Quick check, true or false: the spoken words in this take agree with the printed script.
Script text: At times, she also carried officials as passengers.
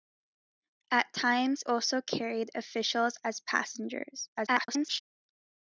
false